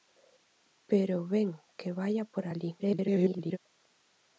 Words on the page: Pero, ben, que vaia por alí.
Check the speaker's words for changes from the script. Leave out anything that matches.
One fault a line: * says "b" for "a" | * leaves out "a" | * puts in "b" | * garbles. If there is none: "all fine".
* garbles